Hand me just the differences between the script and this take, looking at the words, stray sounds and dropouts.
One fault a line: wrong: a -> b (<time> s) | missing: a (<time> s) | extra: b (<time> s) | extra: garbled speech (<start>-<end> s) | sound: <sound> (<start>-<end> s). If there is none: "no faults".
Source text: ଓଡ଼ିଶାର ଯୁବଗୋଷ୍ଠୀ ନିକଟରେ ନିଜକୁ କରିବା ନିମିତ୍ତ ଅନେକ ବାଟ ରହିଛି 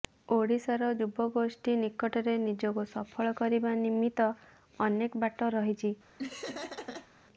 extra: ସଫଳ (2.9 s)
sound: laugh (6.2-7.1 s)